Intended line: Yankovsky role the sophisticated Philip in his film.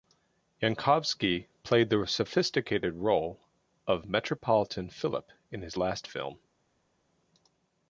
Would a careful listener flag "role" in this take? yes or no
yes